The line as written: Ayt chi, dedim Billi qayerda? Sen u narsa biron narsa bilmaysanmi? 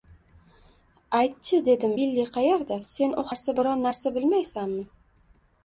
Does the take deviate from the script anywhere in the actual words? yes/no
no